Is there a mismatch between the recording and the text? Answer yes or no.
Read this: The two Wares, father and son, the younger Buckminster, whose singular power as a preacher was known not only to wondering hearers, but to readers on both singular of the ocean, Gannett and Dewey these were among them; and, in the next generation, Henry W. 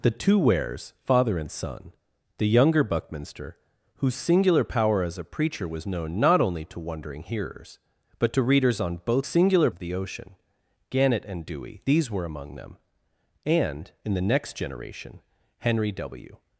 no